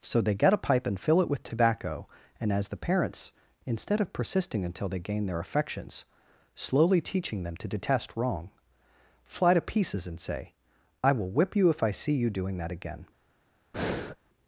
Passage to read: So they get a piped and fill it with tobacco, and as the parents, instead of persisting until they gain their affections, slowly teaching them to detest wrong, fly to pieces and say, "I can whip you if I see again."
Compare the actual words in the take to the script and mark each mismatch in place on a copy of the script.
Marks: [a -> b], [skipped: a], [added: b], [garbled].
So they get a [piped -> pipe] and fill it with tobacco, and as the parents, instead of persisting until they gain their affections, slowly teaching them to detest wrong, fly to pieces and say, "I [can -> will] whip you if I see [added: you doing that] again."